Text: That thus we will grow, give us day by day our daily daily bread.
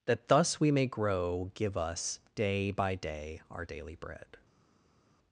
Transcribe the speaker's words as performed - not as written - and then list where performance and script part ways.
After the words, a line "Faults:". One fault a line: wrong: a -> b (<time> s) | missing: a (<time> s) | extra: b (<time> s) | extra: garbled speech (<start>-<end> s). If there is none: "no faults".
That thus we may grow, give us day by day our daily bread.
Faults:
wrong: will -> may (0.7 s)
missing: daily (3.9 s)